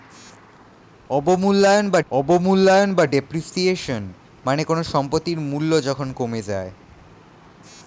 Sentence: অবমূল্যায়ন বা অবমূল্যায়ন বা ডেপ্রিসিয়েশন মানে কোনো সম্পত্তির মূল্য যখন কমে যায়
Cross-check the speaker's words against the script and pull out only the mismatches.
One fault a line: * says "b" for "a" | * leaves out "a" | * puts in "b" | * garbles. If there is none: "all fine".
all fine